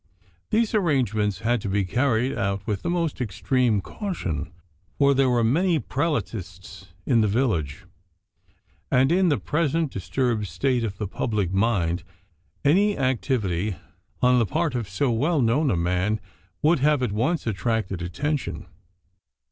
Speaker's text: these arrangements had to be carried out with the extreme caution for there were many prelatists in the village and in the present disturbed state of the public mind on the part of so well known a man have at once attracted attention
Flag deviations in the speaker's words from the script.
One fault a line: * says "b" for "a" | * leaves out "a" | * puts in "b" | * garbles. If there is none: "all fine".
* puts in "most"
* puts in "any activity"
* puts in "would"